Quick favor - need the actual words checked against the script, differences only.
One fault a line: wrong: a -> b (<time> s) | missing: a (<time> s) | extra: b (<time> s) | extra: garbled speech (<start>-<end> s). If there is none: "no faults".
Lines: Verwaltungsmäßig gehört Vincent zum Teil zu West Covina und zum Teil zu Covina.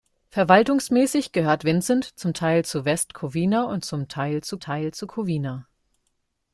extra: Teil zu (4.6 s)